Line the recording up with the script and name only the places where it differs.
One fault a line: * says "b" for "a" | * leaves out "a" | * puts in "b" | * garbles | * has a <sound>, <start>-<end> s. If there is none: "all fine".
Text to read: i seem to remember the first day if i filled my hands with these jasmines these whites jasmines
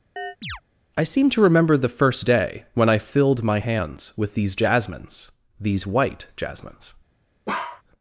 * has a chirp, 0.2-0.6 s
* says "when" for "if"
* says "white" for "whites"
* has a bark, 7.5-7.8 s